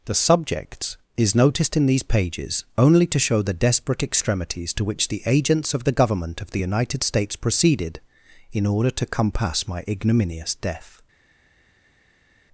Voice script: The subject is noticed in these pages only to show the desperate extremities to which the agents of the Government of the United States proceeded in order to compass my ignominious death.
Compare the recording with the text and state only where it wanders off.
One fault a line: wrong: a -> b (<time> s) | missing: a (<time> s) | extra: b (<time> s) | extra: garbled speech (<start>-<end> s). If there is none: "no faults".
wrong: subject -> subjects (0.1 s)